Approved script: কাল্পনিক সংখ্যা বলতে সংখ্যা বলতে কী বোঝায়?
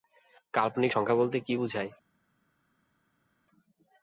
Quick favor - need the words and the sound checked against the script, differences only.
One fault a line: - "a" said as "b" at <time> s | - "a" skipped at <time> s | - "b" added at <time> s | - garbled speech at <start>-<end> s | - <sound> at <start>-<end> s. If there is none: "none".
- "সংখ্যা বলতে" skipped at 1.4 s